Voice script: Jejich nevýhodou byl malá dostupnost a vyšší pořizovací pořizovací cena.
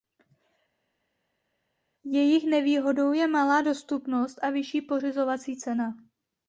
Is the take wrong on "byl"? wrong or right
wrong